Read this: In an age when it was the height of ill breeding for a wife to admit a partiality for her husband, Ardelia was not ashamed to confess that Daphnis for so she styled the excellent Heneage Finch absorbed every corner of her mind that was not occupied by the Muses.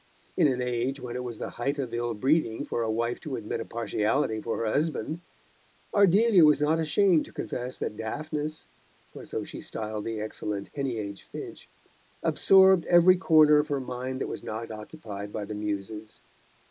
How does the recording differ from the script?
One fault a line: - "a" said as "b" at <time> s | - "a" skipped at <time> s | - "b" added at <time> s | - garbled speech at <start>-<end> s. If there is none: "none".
none